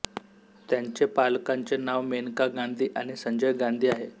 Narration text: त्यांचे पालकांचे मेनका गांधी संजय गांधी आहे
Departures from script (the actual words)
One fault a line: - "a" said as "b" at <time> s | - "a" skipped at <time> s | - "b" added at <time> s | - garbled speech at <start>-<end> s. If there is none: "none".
- "नाव" added at 1.8 s
- "आणि" added at 2.9 s